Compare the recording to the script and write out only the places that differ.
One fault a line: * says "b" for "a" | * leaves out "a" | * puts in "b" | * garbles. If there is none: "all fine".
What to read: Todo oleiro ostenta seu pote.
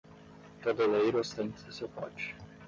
all fine